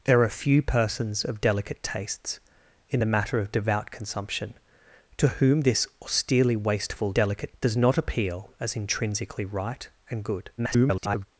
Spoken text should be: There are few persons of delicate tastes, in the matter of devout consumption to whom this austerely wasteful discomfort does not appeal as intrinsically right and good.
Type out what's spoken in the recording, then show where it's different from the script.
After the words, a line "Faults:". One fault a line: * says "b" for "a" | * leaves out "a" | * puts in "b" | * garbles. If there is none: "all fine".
There are few persons of delicate tastes, in the matter of devout consumption to whom this austerely wasteful delicate does not appeal as intrinsically right and good. [garbled]
Faults:
* says "delicate" for "discomfort"
* garbles